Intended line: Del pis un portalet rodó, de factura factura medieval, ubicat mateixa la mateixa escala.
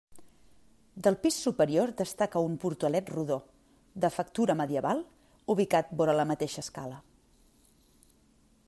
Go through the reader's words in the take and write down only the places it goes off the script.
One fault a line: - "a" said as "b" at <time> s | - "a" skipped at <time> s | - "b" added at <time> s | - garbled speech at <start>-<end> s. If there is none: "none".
- "superior destaca" added at 1.5 s
- "factura" skipped at 4.6 s
- "mateixa" said as "vora" at 6.0 s